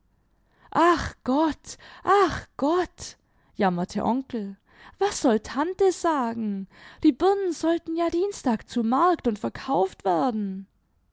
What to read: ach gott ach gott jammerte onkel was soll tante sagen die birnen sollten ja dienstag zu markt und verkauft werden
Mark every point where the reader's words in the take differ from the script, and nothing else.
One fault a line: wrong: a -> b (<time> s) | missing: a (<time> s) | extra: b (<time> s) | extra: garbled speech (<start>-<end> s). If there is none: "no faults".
no faults